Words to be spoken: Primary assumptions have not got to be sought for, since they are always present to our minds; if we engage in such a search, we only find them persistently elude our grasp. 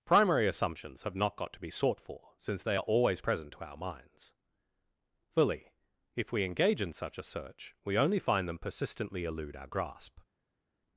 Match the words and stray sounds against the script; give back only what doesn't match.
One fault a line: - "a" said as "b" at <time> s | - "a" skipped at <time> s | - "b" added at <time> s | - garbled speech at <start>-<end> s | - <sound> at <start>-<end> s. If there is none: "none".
- "fully" added at 5.3 s